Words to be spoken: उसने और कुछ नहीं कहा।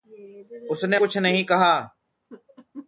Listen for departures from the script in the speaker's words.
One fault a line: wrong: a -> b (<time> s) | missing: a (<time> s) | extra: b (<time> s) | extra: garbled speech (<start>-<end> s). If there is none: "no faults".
missing: और (1.0 s)